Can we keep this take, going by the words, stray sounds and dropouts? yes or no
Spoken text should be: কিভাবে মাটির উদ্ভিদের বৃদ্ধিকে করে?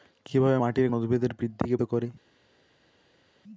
yes